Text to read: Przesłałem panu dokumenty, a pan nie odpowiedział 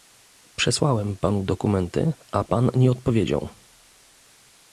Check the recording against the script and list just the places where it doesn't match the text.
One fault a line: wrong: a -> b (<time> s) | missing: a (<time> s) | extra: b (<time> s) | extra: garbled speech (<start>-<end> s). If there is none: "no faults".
no faults